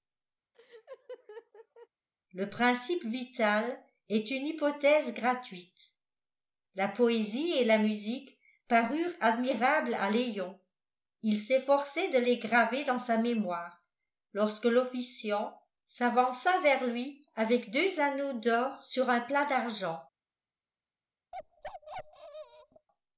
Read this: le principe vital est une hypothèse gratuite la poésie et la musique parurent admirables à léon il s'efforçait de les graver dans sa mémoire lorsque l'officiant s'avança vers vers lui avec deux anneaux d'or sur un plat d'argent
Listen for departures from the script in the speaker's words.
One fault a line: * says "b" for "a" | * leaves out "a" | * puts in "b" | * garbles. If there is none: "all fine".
* leaves out "vers"